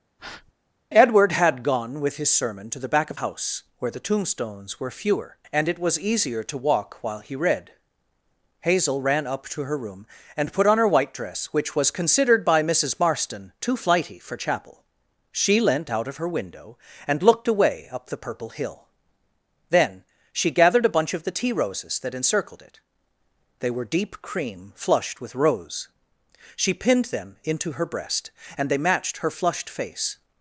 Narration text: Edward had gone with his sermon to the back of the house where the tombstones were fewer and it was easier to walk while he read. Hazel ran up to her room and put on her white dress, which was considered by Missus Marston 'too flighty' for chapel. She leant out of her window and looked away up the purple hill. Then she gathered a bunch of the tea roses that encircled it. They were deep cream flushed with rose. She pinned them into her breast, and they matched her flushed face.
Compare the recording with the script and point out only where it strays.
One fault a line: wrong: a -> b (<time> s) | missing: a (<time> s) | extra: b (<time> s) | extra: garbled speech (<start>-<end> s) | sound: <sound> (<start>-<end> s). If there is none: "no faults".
sound: breath (0.2-0.5 s)
missing: the (3.2 s)